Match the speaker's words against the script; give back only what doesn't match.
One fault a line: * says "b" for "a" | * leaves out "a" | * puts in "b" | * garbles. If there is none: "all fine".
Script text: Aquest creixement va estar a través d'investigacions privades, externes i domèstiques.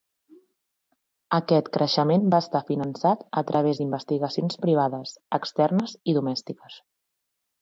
* puts in "finançat"